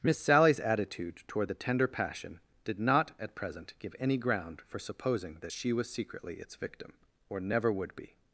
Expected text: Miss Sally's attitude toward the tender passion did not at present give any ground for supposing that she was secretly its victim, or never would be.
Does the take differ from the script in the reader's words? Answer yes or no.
no